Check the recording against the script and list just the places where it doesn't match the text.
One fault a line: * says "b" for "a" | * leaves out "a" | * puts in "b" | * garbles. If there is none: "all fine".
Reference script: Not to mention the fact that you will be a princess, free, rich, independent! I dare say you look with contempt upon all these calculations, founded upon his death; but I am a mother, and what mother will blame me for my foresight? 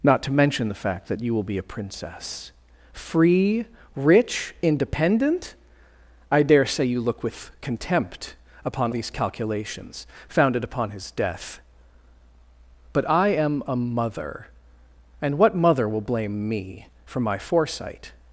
* leaves out "all"